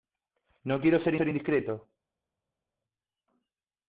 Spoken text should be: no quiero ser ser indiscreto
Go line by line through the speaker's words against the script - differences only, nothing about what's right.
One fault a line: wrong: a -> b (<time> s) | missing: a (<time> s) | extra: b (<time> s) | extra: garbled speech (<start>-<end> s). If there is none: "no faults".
no faults